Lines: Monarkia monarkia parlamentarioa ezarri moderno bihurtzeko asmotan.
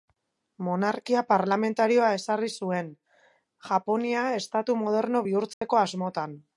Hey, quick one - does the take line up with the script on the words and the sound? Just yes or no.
no